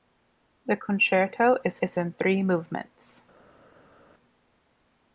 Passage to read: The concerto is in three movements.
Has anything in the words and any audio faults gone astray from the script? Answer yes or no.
yes